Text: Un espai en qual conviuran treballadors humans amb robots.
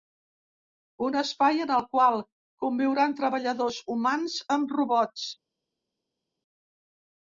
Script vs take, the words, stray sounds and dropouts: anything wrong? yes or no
yes